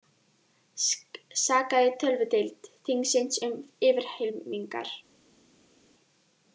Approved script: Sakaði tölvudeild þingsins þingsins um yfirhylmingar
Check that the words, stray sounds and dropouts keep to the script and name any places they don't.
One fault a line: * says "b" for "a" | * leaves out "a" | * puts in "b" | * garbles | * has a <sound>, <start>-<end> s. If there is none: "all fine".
* leaves out "þingsins"